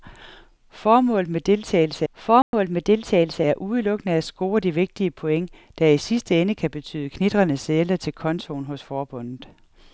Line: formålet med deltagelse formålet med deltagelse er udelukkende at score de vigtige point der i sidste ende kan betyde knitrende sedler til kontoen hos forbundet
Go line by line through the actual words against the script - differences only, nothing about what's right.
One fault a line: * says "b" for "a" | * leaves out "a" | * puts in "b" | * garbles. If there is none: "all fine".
all fine